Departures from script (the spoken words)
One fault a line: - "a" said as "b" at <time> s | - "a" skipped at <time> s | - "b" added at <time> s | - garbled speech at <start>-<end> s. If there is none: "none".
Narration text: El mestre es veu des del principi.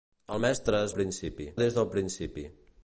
- "veu" said as "principi" at 0.9 s